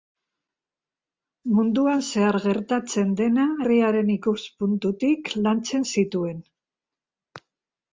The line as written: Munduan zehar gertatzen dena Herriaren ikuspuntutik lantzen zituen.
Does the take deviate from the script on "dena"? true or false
false